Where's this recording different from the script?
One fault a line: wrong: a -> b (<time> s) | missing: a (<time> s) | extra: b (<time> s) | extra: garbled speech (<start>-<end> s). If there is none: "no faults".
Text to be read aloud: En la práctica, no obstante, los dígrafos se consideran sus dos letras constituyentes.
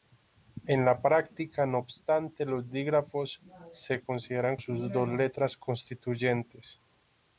no faults